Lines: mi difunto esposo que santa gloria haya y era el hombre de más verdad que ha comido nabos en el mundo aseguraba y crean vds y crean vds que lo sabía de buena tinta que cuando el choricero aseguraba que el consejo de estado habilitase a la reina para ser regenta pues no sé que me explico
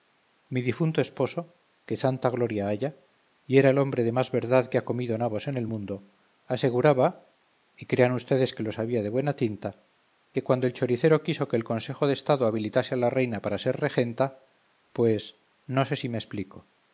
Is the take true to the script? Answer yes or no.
no